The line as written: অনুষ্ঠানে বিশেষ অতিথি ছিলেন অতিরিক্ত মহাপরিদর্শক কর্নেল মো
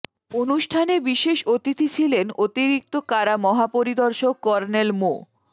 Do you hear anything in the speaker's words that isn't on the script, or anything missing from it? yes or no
yes